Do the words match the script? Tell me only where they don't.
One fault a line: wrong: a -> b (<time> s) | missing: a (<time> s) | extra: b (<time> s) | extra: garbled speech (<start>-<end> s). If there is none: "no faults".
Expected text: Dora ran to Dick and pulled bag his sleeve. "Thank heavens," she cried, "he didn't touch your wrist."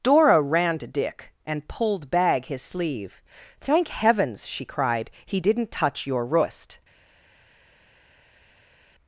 no faults